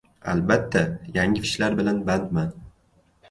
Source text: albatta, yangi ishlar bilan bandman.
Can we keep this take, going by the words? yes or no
yes